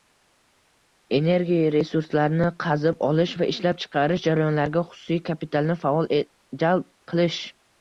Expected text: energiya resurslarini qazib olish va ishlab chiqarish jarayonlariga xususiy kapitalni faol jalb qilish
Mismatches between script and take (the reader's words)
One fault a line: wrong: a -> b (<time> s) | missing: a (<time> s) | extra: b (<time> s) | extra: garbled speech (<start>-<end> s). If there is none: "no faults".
no faults